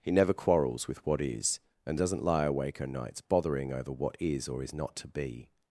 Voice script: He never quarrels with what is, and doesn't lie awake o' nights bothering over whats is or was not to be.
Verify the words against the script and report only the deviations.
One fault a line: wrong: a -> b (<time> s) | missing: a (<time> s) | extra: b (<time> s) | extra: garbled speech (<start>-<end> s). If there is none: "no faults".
wrong: whats -> what (3.9 s)
wrong: was -> is (4.6 s)